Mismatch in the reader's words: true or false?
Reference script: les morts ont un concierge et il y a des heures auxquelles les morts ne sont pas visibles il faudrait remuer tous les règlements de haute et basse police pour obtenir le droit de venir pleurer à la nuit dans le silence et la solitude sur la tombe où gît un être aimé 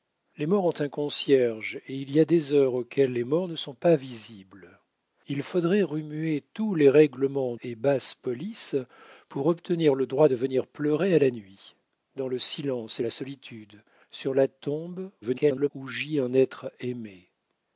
true